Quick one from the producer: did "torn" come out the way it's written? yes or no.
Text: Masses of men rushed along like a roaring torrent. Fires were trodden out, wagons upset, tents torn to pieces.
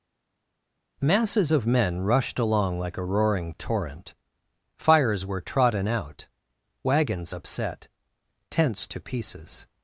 no